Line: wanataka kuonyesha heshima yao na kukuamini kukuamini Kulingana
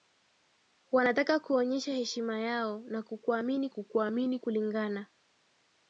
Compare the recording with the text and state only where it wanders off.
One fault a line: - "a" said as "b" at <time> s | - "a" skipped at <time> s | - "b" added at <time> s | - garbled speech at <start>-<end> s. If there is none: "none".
none